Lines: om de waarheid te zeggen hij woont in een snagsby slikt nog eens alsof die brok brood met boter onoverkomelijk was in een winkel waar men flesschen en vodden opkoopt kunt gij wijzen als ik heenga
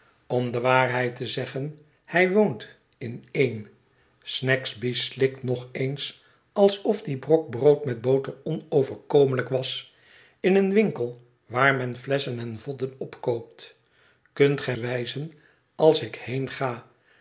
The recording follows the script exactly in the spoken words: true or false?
true